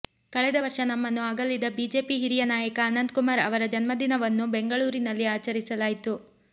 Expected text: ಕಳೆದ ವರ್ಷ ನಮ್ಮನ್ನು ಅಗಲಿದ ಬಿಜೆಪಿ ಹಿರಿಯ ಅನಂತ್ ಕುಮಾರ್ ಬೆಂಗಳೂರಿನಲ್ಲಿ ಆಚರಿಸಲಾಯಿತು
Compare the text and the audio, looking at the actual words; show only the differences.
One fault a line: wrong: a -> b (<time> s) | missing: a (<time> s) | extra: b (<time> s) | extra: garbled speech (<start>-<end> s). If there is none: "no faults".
extra: ನಾಯಕ (2.5 s)
extra: ಅವರ ಜನ್ಮದಿನವನ್ನು (3.5 s)